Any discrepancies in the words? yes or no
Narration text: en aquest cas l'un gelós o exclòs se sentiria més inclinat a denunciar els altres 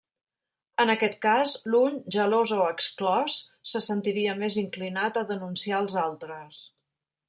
no